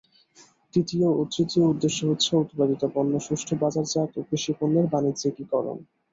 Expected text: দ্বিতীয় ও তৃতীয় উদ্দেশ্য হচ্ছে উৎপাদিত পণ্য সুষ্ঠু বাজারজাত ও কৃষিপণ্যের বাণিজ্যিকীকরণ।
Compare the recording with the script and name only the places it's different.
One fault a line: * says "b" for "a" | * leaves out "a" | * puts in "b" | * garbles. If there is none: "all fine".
all fine